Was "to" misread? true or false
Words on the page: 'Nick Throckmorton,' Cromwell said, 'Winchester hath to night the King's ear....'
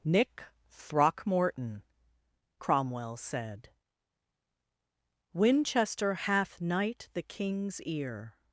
true